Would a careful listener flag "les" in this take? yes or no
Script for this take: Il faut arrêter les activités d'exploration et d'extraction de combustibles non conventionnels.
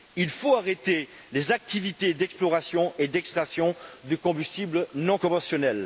no